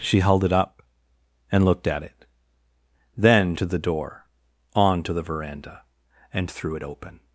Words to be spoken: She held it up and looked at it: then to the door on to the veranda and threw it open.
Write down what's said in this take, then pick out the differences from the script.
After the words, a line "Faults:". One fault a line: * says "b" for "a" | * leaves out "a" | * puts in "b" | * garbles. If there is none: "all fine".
She held it up and looked at it: then to the door on to the veranda and threw it open.
Faults:
all fine